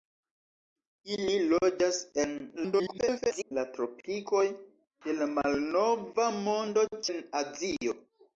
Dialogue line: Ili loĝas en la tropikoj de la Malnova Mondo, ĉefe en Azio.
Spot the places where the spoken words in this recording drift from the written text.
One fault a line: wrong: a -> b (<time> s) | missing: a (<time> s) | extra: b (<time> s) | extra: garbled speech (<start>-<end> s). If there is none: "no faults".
extra: garbled speech (2.6-3.5 s)
missing: ĉefe (6.9 s)